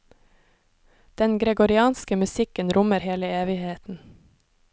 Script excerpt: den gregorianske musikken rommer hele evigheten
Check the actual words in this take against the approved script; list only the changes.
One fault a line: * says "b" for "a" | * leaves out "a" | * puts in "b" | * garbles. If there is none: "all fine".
all fine